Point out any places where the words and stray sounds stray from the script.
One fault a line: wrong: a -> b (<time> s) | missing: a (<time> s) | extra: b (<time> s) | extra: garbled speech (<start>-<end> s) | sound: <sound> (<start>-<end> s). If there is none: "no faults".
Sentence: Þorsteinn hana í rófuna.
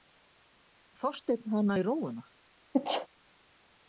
sound: sneeze (2.7-3.1 s)